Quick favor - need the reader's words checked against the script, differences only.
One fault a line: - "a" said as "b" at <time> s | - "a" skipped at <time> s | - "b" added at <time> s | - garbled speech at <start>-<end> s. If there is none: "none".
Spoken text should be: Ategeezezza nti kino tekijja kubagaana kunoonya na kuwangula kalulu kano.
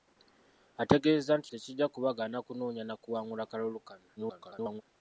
- "kino" skipped at 1.5 s
- garbled speech at 4.2-4.8 s